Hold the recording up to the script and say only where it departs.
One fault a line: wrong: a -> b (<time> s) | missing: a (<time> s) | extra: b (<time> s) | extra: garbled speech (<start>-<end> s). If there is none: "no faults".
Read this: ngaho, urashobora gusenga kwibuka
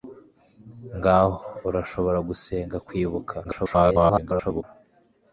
extra: garbled speech (3.4-4.6 s)